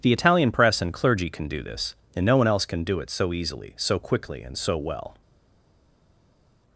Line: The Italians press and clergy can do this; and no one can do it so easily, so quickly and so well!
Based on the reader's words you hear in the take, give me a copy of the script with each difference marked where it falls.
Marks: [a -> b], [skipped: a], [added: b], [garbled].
The [Italians -> Italian] press and clergy can do this; and no one [added: else] can do it so easily, so quickly and so well!